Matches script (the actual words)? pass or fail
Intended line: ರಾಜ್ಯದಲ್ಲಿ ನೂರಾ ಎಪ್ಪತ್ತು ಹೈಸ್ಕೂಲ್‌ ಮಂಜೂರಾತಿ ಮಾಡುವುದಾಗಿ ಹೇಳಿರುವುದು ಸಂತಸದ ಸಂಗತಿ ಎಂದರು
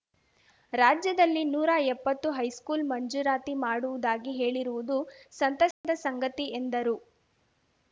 pass